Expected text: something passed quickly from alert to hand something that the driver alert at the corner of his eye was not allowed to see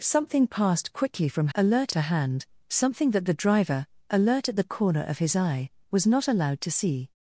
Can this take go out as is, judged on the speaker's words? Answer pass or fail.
pass